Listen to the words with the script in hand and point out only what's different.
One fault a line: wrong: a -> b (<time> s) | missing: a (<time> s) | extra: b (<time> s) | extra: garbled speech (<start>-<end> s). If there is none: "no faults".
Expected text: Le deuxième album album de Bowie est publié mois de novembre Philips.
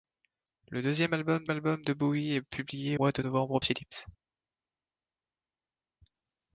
no faults